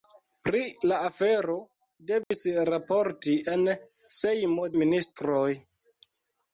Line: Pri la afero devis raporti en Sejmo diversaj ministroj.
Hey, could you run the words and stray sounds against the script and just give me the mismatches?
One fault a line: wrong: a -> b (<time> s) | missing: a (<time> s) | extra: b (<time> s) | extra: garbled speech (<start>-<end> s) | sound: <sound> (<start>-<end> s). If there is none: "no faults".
sound: dropout (2.2-2.3 s)
missing: diversaj (4.7 s)